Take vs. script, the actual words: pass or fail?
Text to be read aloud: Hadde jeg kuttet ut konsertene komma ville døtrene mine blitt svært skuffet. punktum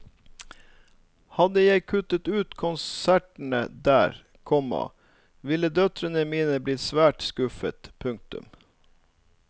fail